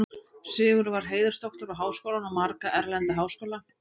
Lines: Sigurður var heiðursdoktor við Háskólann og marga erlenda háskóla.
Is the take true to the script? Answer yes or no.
yes